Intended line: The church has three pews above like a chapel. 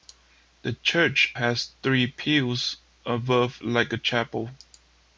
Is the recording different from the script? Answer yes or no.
no